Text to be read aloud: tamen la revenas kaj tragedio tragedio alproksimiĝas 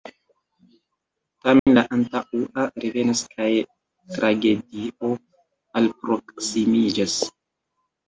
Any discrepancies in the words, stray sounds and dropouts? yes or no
yes